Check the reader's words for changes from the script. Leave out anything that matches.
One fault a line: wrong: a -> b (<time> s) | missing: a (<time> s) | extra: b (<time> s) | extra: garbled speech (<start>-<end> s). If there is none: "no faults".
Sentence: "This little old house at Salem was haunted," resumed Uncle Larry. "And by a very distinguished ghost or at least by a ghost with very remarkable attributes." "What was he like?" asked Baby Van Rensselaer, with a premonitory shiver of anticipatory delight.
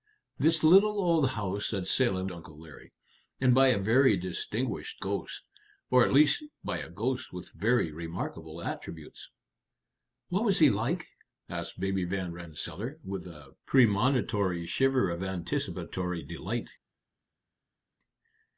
missing: was haunted resumed (2.3 s)